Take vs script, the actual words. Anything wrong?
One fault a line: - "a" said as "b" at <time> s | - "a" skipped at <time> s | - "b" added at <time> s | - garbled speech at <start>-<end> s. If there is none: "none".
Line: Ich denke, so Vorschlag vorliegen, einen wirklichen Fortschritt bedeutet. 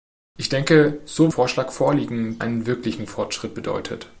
none